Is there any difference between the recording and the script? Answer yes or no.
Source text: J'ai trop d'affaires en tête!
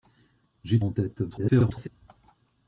yes